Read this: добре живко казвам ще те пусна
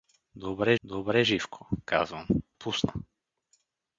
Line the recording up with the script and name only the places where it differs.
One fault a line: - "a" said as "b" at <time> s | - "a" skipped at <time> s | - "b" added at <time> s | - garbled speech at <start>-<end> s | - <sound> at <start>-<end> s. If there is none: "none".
- "добре" added at 0.8 s
- "ще те" skipped at 2.3 s